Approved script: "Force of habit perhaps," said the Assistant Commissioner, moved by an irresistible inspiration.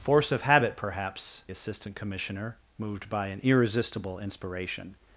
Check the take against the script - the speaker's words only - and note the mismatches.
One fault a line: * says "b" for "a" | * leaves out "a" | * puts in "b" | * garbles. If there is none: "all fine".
* leaves out "said the"